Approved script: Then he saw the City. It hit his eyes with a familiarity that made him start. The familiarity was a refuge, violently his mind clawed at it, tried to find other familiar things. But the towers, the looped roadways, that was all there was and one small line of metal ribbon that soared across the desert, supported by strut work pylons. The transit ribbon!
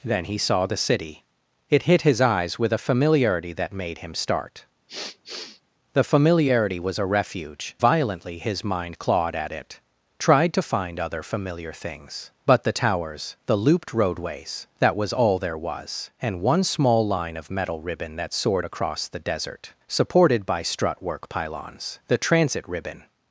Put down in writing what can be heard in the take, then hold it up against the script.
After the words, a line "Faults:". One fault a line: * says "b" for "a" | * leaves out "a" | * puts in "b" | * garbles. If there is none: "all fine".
Then he saw the City. It hit his eyes with a familiarity that made him start. The familiarity was a refuge, violently his mind clawed at it, tried to find other familiar things. But the towers, the looped roadways, that was all there was and one small line of metal ribbon that soared across the desert, supported by strut work pylons. The transit ribbon!
Faults:
all fine